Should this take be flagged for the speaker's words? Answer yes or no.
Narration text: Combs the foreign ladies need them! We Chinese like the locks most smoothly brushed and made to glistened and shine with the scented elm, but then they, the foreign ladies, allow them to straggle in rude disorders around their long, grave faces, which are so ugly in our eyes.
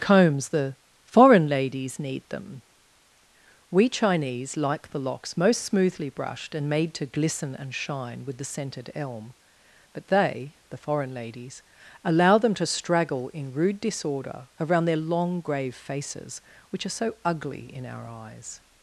yes